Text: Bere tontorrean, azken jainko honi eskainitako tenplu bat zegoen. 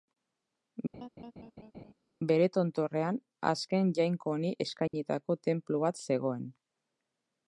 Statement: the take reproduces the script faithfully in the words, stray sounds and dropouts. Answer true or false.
false